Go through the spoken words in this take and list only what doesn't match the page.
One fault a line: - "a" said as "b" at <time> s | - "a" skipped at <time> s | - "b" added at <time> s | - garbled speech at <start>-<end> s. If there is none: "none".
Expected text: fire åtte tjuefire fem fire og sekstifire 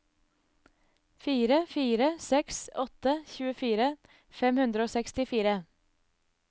- "fire seks" added at 1.7 s
- "fire" said as "hundre" at 4.7 s